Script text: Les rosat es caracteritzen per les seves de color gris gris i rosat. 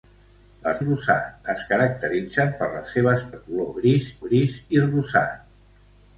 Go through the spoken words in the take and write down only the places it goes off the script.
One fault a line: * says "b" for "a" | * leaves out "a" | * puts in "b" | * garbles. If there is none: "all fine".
all fine